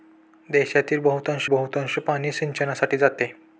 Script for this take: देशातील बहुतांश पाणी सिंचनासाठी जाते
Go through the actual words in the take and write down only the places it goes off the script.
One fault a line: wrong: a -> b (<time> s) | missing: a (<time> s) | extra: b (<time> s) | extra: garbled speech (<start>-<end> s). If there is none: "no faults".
extra: बहुतांश (1.5 s)